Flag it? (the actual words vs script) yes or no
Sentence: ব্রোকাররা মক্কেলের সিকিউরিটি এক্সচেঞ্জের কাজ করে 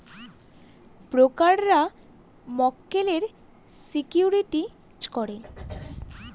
yes